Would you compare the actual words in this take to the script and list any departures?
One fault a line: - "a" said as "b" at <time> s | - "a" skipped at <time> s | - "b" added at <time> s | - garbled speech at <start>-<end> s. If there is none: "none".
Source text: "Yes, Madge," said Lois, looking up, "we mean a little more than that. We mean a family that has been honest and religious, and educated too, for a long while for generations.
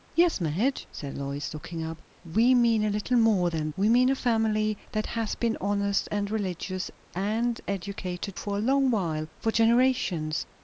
- "that" skipped at 3.7 s
- "too" skipped at 8.4 s